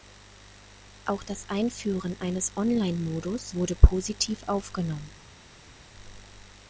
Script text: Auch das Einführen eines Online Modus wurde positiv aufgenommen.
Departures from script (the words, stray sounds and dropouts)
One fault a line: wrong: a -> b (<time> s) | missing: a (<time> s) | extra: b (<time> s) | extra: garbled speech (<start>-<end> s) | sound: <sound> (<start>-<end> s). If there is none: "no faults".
no faults